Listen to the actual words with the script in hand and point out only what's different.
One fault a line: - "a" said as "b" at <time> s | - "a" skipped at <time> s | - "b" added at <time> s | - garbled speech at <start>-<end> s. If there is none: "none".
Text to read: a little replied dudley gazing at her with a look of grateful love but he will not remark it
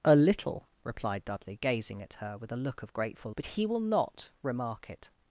- "love" skipped at 3.3 s